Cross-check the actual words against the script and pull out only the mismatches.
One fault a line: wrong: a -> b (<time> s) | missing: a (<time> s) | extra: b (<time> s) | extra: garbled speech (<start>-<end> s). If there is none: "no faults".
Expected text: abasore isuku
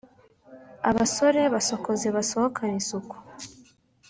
extra: basokoze basohokane (1.5 s)